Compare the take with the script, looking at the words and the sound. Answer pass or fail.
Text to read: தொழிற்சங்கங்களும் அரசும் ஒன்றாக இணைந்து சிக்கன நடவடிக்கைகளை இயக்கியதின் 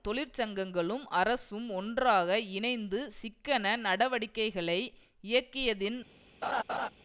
fail